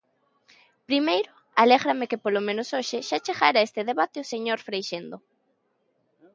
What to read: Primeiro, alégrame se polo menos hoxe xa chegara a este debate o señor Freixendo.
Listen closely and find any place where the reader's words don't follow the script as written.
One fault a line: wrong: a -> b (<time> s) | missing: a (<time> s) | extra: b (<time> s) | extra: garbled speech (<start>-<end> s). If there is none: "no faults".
wrong: se -> que (2.1 s)